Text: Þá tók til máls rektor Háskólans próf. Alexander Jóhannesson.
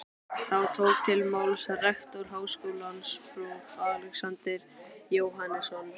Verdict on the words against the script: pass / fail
pass